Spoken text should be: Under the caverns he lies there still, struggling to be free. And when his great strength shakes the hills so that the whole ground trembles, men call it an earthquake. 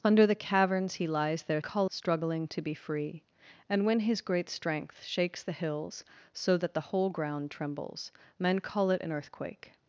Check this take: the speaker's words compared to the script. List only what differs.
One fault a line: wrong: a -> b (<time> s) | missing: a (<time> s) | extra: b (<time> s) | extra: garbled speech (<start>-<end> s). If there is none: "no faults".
wrong: still -> call (1.6 s)